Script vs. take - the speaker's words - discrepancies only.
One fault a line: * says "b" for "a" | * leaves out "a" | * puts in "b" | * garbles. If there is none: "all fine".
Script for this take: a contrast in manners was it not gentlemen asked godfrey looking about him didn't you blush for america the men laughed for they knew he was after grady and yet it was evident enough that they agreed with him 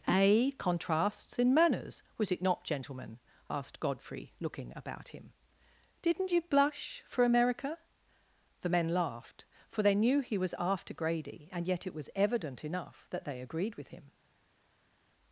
* says "contrasts" for "contrast"